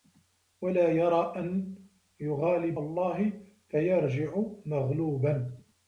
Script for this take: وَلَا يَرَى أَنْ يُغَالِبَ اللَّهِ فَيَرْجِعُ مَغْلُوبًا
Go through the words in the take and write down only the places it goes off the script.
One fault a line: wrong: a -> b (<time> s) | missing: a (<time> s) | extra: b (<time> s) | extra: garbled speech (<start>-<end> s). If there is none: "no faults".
no faults